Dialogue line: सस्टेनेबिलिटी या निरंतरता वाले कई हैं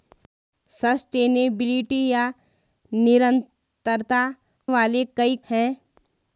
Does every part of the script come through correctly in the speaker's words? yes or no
yes